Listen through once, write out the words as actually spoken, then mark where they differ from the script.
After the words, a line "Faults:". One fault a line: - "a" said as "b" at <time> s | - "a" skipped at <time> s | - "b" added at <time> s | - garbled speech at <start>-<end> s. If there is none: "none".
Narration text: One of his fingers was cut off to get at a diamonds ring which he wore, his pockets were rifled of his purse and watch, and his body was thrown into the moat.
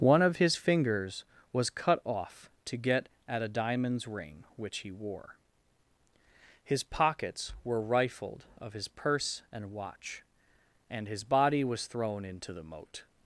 One of his fingers was cut off to get at a diamonds ring which he wore, his pockets were rifled of his purse and watch, and his body was thrown into the moat.
Faults:
none